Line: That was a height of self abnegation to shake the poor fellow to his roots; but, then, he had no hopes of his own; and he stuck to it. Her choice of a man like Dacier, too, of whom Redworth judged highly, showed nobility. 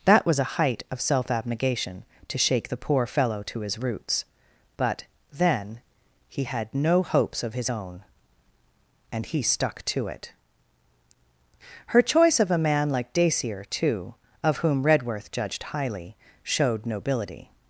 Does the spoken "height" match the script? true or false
true